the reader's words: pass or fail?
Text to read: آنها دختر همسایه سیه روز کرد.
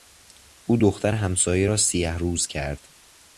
fail